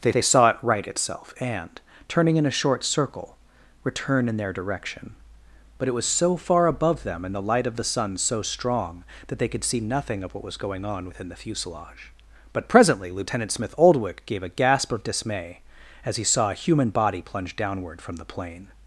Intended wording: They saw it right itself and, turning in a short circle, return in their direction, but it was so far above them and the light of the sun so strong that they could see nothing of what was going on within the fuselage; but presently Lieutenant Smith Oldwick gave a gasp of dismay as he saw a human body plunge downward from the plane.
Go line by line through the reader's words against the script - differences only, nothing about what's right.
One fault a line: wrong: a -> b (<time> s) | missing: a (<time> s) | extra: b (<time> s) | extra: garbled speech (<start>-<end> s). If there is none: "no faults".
extra: they (0.1 s)